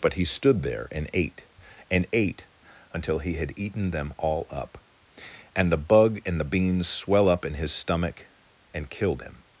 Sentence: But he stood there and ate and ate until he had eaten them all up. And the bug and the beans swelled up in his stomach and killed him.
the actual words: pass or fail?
fail